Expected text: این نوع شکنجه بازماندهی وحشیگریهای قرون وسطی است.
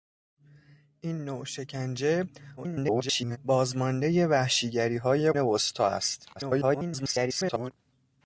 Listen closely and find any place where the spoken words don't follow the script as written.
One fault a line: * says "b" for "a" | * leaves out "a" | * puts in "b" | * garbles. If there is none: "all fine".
* garbles
* leaves out "قرون"
* garbles